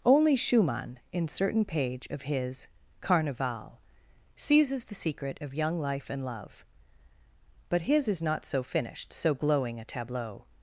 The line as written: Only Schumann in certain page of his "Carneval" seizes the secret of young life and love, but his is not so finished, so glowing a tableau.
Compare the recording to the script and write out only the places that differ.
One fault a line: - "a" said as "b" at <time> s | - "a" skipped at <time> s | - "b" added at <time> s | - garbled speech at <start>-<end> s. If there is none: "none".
none